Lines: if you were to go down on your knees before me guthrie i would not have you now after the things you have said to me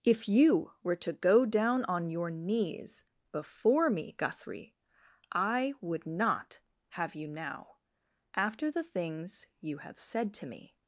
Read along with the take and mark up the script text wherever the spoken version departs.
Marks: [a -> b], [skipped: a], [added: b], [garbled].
if you were to go down on your knees before me guthrie i would not have you now after the things you have said to me